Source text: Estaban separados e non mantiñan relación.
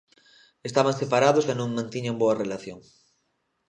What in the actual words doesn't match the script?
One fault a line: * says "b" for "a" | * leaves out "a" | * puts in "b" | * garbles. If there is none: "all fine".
* puts in "boa"